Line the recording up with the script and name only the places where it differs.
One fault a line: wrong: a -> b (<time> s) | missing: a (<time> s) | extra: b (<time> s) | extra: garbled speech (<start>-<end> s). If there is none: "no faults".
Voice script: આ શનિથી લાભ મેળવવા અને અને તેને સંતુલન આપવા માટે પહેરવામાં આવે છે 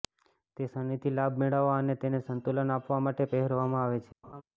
wrong: આ -> તે (0.6 s)
missing: અને (2.0 s)